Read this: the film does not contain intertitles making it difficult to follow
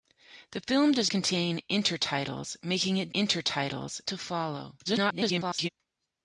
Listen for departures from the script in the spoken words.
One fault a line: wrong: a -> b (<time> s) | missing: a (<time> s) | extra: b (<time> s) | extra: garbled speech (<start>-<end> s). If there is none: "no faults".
missing: not (1.1 s)
wrong: difficult -> intertitles (3.1 s)
extra: garbled speech (4.9-5.7 s)